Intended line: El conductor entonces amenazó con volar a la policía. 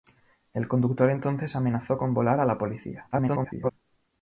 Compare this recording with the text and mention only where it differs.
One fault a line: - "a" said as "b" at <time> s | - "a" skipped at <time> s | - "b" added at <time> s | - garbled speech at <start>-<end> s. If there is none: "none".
- garbled speech at 3.1-3.7 s